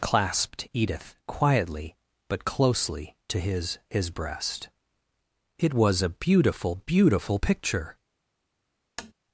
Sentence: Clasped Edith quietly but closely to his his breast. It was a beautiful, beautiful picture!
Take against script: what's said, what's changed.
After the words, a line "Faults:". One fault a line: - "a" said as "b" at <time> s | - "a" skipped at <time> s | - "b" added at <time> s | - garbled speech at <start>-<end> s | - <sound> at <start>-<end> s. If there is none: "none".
Clasped Edith quietly but closely to his his breast. It was a beautiful, beautiful picture!
Faults:
- tap at 9.0-9.1 s